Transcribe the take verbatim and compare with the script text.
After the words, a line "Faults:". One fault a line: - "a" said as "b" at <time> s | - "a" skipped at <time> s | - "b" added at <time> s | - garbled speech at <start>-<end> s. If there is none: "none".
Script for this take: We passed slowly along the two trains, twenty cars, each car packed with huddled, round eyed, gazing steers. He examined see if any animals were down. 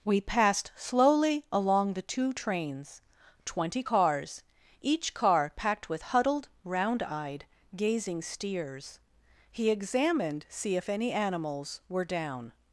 We passed slowly along the two trains, twenty cars, each car packed with huddled, round eyed, gazing steers. He examined see if any animals were down.
Faults:
none